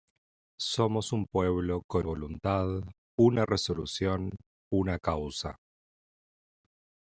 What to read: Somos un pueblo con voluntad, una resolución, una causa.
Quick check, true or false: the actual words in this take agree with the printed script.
true